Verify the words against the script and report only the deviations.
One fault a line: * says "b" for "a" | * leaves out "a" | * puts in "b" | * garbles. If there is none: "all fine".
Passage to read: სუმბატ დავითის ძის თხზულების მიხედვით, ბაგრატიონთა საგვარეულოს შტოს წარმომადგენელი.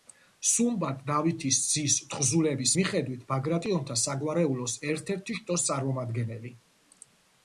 * puts in "ერთ ერთი"